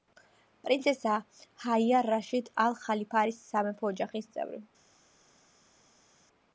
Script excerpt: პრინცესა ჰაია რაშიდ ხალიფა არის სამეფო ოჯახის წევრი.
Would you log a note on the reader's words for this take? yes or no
yes